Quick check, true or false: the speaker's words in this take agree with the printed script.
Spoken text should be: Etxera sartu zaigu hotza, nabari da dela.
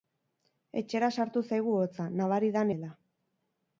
true